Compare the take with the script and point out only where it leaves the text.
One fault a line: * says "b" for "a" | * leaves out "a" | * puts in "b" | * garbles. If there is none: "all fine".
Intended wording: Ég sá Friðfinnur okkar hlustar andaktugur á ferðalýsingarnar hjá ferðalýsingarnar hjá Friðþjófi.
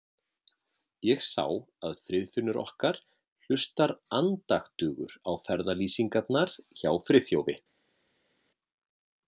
* puts in "að"
* leaves out "ferðalýsingarnar hjá"